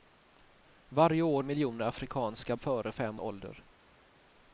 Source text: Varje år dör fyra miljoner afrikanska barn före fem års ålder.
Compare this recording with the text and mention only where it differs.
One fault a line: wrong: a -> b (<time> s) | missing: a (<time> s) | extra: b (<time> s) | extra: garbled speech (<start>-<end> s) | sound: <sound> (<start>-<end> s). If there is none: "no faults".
missing: dör fyra (1.4 s)
missing: barn (2.6 s)
missing: års (3.2 s)